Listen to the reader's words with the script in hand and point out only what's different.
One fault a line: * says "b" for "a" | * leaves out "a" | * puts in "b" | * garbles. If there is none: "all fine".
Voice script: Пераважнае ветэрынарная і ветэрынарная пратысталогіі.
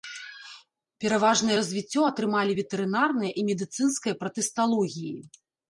* puts in "развіццё атрымалі"
* says "медыцынская" for "ветэрынарная"